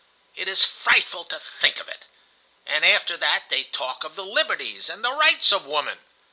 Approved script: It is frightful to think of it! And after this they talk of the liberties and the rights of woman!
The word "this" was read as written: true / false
false